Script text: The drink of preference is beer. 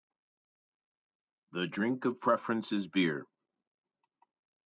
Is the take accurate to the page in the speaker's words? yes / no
yes